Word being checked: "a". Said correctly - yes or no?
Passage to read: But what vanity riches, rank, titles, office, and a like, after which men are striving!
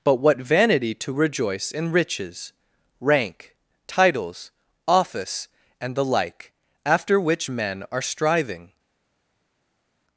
no